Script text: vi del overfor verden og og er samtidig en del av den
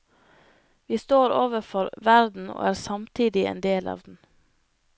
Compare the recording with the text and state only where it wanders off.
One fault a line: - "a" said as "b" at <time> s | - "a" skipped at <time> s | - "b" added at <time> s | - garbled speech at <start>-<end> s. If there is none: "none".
- "del" said as "står" at 1.0 s
- "og" skipped at 2.7 s